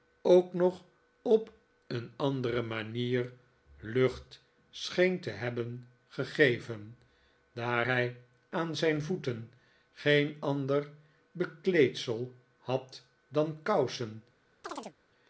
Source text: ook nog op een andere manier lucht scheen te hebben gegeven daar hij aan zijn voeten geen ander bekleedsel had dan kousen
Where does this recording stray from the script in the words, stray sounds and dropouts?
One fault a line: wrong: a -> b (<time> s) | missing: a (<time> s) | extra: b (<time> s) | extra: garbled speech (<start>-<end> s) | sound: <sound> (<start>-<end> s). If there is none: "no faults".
sound: chirp (14.6-15.0 s)